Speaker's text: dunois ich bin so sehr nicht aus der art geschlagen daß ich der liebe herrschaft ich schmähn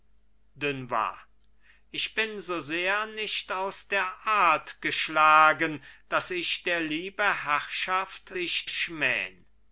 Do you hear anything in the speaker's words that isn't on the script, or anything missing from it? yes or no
no